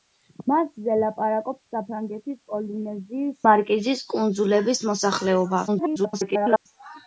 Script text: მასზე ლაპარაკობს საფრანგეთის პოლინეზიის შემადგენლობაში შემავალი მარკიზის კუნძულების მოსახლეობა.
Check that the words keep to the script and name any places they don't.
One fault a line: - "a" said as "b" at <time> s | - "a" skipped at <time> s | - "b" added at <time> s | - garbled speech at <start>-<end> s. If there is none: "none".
- "შემადგენლობაში შემავალი" skipped at 3.4 s
- garbled speech at 5.7-6.7 s